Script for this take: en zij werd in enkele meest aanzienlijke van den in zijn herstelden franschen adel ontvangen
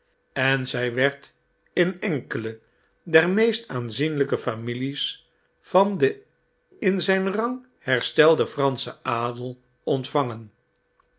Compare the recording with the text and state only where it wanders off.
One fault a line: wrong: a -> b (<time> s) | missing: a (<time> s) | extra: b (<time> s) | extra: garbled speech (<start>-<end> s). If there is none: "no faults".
extra: der (3.0 s)
extra: families (4.4 s)
extra: rang (7.3 s)